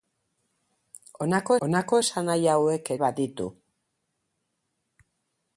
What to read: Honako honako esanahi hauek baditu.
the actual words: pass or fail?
pass